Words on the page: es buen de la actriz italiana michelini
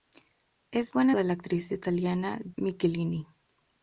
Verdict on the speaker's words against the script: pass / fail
pass